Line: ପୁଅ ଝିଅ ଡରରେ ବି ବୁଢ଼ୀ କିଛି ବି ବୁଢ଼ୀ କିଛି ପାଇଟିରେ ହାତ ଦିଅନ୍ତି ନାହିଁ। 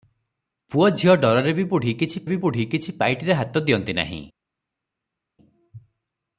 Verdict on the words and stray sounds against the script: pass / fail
pass